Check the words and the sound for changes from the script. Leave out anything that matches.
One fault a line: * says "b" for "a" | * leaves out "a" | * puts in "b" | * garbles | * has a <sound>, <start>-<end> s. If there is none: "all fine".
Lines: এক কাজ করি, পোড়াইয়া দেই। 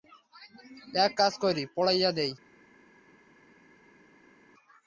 all fine